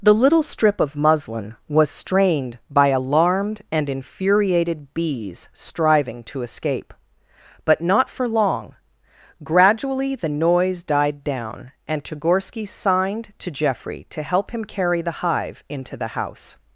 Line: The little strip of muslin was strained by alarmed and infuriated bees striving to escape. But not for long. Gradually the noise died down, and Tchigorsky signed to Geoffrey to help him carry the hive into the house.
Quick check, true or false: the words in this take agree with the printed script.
true